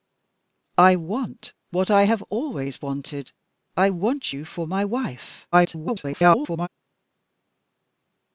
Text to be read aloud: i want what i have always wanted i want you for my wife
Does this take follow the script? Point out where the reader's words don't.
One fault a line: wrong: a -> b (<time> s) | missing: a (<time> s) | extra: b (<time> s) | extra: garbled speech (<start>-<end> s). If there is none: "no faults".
extra: garbled speech (5.5-6.7 s)